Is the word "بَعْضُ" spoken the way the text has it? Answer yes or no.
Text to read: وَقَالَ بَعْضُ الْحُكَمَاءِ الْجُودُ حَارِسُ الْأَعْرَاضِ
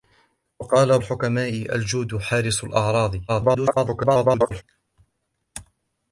no